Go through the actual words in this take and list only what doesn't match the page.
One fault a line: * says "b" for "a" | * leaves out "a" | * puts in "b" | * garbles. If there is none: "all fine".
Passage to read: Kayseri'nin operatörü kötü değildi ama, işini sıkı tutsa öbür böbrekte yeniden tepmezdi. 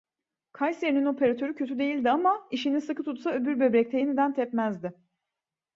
all fine